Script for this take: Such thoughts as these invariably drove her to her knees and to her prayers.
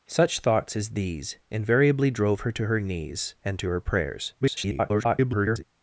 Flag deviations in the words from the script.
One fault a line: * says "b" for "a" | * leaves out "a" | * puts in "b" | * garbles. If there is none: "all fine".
* garbles